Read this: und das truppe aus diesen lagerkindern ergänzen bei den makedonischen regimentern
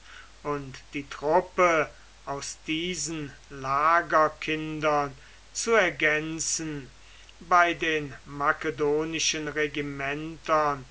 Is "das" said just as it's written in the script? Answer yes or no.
no